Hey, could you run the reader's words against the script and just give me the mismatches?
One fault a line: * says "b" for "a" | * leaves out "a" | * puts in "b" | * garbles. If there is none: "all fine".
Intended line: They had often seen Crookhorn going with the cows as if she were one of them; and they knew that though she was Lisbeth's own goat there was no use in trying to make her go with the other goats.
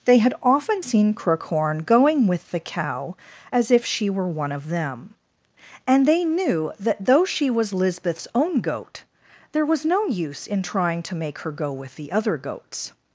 * says "cow" for "cows"